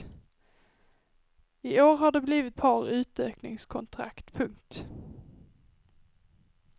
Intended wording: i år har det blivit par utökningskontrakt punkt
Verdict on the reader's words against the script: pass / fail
pass